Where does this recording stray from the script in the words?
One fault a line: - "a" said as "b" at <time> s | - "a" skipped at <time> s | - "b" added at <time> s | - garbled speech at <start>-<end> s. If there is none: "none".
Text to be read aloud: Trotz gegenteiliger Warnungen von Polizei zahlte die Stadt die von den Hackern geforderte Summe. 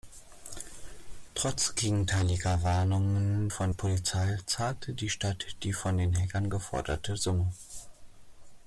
none